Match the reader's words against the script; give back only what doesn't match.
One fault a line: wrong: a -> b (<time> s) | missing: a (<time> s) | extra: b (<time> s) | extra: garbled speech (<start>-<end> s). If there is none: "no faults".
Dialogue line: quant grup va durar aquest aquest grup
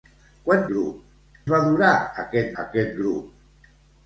no faults